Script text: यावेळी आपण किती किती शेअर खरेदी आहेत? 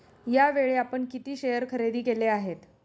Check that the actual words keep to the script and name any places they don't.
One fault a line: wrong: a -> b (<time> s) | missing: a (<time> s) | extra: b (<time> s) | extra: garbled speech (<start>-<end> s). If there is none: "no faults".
missing: किती (1.4 s)
extra: केले (2.0 s)